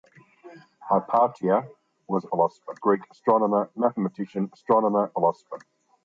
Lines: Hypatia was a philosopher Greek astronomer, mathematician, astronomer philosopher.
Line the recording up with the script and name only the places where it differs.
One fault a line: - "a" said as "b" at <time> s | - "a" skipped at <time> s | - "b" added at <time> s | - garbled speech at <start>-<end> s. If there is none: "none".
none